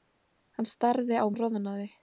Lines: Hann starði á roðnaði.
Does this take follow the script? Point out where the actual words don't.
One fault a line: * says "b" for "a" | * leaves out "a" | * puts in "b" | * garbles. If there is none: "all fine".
all fine